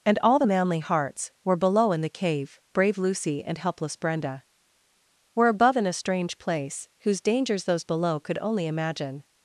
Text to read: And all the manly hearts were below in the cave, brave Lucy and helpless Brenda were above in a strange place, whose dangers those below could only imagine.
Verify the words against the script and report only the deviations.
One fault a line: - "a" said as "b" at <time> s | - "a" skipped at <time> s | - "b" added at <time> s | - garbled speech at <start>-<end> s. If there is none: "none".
none